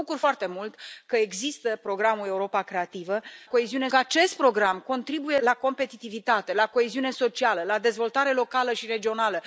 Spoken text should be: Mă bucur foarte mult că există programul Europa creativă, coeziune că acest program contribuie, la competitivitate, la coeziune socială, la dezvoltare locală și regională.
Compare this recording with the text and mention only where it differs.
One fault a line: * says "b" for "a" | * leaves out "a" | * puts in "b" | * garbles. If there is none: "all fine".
all fine